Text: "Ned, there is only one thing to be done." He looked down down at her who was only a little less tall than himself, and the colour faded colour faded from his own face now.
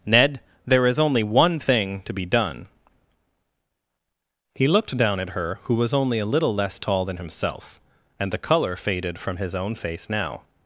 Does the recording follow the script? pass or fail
fail